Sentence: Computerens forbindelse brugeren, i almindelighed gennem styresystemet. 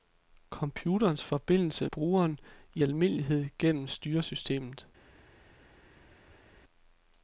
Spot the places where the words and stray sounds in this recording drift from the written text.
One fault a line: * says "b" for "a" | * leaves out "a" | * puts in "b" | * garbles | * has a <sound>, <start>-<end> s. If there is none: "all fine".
all fine